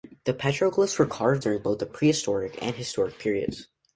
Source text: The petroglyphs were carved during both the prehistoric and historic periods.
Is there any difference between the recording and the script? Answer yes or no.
no